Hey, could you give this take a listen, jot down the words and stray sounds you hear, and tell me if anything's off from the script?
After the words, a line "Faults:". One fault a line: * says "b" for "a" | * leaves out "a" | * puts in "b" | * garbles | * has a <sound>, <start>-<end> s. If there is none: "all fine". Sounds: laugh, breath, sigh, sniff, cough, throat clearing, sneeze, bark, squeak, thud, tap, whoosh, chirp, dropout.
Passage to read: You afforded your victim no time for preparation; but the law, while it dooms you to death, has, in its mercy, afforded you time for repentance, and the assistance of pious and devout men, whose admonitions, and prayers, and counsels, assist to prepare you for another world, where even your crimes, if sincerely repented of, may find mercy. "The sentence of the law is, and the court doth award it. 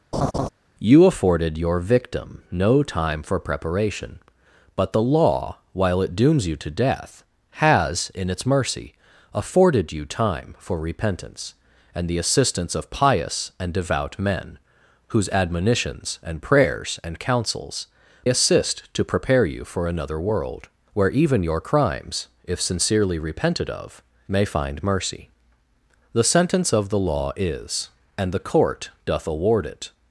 You afforded your victim no time for preparation; but the law, while it dooms you to death, has, in its mercy, afforded you time for repentance, and the assistance of pious and devout men, whose admonitions, and prayers, and counsels, assist to prepare you for another world, where even your crimes, if sincerely repented of, may find mercy. "The sentence of the law is, and the court doth award it.
Faults:
* has a laugh, 0.1-0.5 s